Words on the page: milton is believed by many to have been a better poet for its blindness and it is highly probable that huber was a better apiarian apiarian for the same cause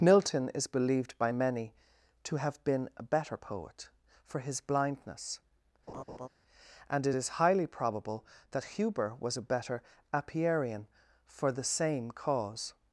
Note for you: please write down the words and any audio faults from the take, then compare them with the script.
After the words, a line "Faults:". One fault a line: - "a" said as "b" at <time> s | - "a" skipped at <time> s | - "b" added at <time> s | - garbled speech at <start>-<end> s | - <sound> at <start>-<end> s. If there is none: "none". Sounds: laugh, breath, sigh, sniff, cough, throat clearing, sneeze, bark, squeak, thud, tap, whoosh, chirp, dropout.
milton is believed by many to have been a better poet for his blindness and it is highly probable that huber was a better apiarian for the same cause
Faults:
- "its" said as "his" at 4.4 s
- laugh at 5.9-6.3 s
- "apiarian" skipped at 10.9 s